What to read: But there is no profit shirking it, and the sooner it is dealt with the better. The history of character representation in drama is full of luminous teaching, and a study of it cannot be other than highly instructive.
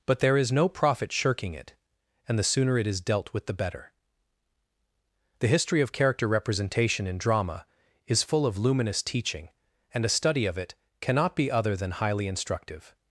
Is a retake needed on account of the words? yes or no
no